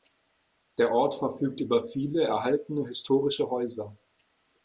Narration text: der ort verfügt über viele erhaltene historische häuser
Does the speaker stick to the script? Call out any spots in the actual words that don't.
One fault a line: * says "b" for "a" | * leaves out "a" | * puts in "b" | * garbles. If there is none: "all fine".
all fine